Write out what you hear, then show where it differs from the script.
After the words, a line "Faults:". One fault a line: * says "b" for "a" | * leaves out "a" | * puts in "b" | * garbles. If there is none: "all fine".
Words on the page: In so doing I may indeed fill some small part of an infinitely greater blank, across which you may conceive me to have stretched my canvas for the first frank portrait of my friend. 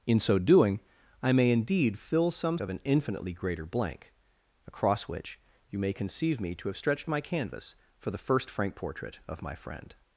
In so doing I may indeed fill some of an infinitely greater blank, across which you may conceive me to have stretched my canvas for the first frank portrait of my friend.
Faults:
* leaves out "small part"